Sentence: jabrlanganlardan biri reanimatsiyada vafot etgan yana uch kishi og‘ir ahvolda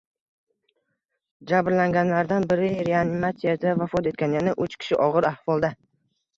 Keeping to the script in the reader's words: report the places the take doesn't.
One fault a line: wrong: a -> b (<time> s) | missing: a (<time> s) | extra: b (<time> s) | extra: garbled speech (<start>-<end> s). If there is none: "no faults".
no faults